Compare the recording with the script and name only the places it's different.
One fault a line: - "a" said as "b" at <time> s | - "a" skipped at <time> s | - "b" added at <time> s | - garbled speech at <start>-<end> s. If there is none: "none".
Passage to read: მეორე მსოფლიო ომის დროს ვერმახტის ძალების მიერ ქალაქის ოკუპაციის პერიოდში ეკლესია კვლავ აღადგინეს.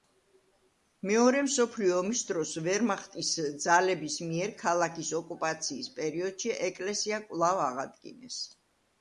none